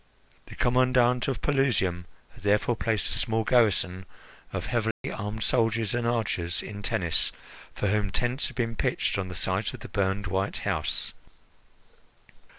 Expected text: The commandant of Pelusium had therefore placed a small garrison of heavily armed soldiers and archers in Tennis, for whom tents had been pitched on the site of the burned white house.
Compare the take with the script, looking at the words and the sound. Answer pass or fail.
fail